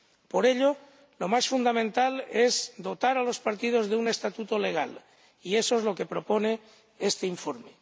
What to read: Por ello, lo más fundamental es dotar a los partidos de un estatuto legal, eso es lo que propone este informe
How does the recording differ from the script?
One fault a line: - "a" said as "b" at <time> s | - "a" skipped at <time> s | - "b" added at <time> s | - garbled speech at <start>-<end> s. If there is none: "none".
- "y" added at 5.4 s